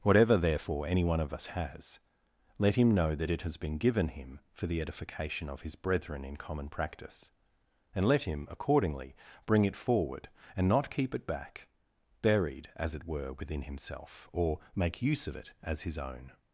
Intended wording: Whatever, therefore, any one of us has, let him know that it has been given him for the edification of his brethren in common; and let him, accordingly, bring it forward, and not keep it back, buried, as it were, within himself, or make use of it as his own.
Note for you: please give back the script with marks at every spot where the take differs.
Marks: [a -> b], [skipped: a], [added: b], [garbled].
Whatever, therefore, any one of us has, let him know that it has been given him for the edification of his brethren in common; [added: practice] and let him, accordingly, bring it forward, and not keep it back, buried, as it were, within himself, or make use of it as his own.